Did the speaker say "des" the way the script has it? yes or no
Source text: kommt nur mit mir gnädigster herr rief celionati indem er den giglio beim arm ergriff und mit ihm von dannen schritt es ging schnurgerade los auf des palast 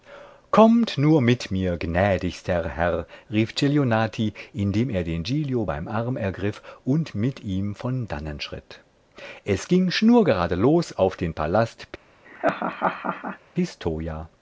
no